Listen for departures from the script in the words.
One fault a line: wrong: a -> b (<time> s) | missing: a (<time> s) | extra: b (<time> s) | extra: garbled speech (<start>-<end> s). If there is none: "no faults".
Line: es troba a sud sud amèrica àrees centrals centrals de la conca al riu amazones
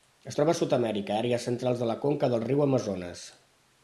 missing: sud (0.7 s)
missing: centrals (1.8 s)
wrong: al -> del (2.3 s)